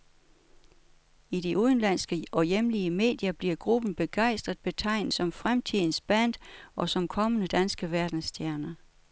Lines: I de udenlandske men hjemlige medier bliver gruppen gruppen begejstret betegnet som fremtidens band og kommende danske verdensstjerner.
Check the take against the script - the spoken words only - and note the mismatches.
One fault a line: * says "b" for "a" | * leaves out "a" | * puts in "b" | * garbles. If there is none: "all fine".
* says "og" for "men"
* leaves out "gruppen"
* puts in "som"